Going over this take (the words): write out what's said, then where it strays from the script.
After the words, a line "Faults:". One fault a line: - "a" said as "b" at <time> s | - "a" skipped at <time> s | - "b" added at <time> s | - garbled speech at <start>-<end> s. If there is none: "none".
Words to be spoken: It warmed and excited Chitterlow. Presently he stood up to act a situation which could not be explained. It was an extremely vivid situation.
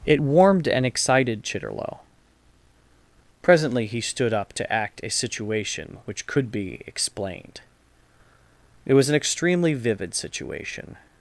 It warmed and excited Chitterlow. Presently he stood up to act a situation which could be explained. It was an extremely vivid situation.
Faults:
- "not" skipped at 6.5 s